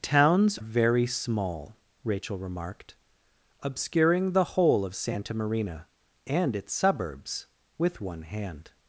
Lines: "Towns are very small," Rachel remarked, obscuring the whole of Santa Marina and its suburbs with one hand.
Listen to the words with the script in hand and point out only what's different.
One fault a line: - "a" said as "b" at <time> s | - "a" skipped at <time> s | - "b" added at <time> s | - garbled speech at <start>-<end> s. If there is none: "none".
- "are" skipped at 0.6 s